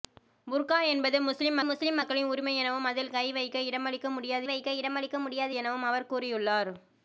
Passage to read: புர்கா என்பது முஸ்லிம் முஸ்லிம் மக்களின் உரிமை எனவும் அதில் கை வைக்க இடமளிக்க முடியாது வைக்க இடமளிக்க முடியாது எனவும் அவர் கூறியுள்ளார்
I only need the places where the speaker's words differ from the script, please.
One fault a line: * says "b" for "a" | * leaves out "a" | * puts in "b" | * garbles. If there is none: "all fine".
all fine